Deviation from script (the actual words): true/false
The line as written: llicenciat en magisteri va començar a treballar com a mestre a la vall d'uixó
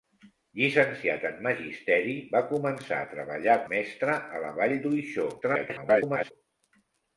true